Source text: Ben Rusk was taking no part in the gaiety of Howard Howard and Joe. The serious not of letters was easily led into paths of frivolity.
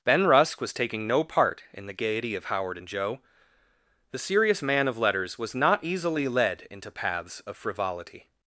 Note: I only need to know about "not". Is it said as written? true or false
false